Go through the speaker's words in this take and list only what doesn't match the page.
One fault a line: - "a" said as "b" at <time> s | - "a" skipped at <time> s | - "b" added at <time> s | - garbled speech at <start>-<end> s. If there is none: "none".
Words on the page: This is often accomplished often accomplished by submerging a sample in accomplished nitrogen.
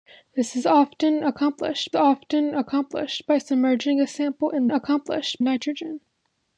none